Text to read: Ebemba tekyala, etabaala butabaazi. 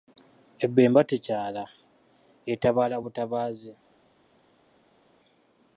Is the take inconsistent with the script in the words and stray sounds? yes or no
no